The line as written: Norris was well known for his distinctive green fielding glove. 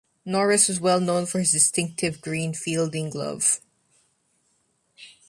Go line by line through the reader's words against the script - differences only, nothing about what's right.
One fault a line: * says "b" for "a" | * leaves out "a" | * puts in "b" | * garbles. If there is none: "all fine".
all fine